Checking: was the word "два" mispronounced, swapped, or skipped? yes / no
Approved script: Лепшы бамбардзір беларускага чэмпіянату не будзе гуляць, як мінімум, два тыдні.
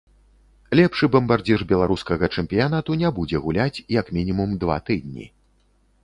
no